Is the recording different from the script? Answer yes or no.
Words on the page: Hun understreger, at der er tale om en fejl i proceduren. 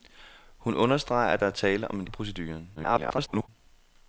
yes